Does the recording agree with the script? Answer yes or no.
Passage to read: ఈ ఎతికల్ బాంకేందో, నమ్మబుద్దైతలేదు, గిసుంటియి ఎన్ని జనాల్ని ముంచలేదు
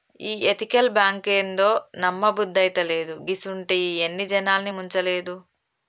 yes